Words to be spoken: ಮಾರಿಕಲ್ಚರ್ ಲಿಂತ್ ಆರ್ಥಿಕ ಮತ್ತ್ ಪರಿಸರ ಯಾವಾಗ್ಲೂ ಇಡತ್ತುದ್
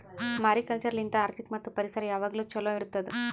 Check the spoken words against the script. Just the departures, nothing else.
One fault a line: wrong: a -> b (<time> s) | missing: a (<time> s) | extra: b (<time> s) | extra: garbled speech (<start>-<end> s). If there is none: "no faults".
extra: ಛಲೋ (2.5 s)